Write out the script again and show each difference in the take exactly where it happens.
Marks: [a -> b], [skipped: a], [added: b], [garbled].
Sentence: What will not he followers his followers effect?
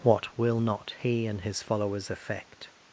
What will not he [followers -> and] his followers effect?